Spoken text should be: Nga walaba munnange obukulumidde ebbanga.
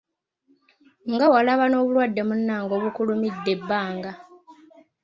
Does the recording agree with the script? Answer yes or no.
no